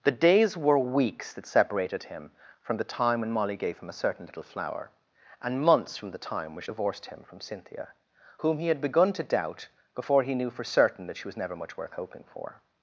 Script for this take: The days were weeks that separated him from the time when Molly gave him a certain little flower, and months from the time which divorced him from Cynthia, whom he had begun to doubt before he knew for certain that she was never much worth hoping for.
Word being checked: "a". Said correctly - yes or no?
yes